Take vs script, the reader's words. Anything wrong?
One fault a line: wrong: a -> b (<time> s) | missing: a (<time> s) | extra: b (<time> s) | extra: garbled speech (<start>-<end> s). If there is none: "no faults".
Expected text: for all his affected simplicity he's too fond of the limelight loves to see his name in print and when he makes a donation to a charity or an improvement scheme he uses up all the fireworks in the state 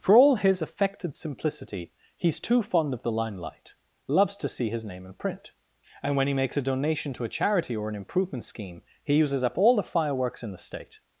no faults